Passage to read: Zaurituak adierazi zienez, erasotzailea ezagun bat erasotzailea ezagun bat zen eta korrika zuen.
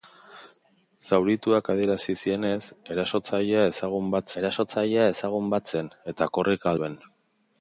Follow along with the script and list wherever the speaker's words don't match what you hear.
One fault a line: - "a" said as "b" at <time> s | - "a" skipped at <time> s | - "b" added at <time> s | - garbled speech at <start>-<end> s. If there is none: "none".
none